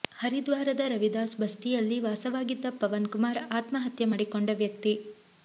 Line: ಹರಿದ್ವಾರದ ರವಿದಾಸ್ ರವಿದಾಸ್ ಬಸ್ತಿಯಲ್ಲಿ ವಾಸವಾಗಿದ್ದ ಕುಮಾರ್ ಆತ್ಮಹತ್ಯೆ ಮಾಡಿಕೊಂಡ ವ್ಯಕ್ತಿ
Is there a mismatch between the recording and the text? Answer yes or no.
yes